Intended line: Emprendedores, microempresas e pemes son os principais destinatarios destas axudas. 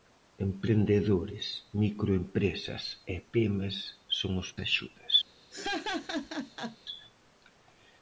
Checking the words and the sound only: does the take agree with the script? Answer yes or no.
no